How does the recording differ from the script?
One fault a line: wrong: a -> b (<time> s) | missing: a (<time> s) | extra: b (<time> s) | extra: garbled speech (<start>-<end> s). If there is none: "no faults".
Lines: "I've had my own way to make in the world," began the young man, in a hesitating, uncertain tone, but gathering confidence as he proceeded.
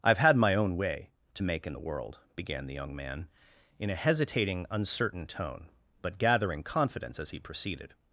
no faults